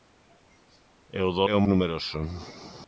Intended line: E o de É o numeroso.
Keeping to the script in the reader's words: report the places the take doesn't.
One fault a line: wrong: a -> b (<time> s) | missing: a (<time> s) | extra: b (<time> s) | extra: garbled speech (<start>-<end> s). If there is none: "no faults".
no faults